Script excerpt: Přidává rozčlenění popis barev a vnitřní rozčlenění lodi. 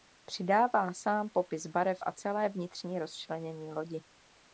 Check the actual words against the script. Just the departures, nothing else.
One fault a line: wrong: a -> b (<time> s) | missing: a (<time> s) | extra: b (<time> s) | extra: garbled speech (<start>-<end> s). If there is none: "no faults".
wrong: rozčlenění -> sám (0.9 s)
extra: celé (2.1 s)